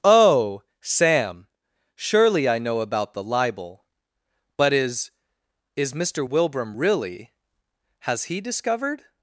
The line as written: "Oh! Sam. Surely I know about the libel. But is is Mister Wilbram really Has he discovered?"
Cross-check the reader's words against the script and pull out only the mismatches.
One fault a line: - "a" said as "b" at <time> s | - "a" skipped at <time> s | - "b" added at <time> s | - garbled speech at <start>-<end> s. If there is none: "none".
none